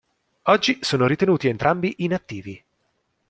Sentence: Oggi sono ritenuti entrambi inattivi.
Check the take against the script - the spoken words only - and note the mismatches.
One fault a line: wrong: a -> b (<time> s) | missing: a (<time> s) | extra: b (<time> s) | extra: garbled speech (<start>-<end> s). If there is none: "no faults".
no faults